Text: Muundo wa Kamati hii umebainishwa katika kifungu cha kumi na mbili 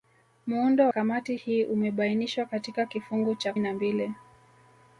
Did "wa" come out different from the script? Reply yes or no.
yes